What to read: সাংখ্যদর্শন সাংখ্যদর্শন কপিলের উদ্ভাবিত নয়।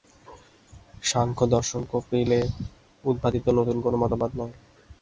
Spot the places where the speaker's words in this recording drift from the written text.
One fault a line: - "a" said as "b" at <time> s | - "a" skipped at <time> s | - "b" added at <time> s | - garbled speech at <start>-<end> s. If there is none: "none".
- "সাংখ্যদর্শন" skipped at 1.8 s
- "নূতন কোন মতবাদ" added at 3.5 s